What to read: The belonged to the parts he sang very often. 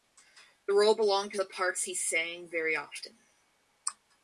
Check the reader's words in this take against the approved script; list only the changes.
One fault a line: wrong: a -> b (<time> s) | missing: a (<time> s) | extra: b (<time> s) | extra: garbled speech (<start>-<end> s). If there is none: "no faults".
extra: role (0.7 s)